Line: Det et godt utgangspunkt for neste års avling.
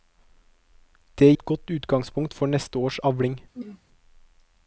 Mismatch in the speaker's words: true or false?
false